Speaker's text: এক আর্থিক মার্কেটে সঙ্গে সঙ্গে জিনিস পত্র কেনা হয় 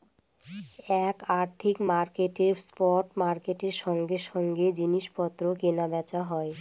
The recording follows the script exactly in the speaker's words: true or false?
false